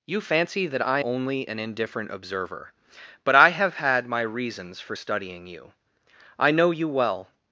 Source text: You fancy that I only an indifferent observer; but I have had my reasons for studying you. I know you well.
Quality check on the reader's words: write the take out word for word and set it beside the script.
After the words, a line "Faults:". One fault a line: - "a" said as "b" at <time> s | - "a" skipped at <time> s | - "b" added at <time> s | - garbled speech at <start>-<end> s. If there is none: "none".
You fancy that I only an indifferent observer; but I have had my reasons for studying you. I know you well.
Faults:
none